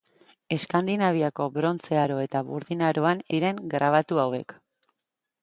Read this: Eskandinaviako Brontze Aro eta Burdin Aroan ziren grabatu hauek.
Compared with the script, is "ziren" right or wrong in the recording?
right